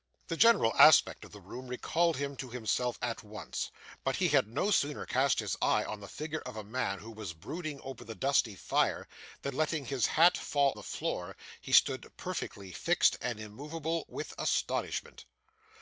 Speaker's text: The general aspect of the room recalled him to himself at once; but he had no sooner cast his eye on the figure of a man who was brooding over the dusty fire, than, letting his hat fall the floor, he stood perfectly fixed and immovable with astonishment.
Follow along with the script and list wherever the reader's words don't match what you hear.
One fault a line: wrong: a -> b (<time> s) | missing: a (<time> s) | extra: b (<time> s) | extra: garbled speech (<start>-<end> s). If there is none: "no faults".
no faults